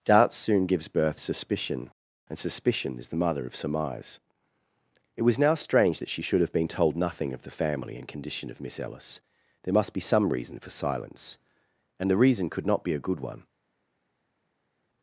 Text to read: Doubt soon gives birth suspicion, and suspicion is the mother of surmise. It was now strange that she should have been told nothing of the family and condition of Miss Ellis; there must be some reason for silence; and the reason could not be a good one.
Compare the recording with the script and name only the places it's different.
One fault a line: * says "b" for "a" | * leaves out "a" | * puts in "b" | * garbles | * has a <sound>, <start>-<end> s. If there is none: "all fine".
all fine